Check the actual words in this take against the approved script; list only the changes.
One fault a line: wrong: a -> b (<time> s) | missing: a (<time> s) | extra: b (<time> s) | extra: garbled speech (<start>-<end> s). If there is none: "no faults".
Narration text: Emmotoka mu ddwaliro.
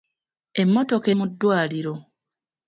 no faults